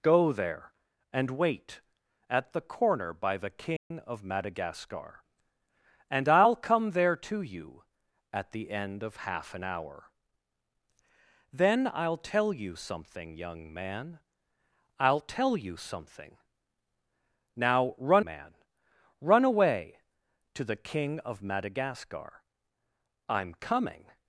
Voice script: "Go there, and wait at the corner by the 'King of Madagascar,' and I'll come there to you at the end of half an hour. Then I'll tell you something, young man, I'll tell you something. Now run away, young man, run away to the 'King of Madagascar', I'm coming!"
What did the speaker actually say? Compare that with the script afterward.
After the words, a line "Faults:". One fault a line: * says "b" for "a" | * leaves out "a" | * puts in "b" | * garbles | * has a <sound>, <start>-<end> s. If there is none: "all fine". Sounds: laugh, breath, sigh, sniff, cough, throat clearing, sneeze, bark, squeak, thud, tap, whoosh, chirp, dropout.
"Go there, and wait at the corner by the 'King of Madagascar,' and I'll come there to you at the end of half an hour. Then I'll tell you something, young man, I'll tell you something. Now run man, run away to the 'King of Madagascar', I'm coming!"
Faults:
* has a dropout, 3.8-3.9 s
* leaves out "away young"